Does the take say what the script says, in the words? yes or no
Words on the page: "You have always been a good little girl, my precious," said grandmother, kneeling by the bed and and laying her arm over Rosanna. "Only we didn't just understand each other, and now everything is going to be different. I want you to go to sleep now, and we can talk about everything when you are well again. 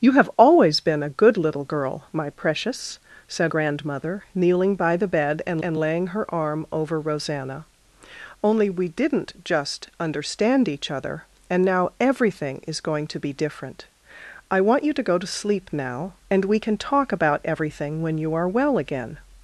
yes